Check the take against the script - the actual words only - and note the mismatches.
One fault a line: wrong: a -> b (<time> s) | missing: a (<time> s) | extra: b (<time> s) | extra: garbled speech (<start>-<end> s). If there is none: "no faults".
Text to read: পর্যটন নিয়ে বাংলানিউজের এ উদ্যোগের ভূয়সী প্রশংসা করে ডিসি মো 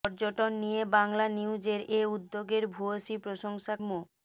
missing: করে ডিসি (3.7 s)